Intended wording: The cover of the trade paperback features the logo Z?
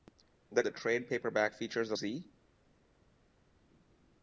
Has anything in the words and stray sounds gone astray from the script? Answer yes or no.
yes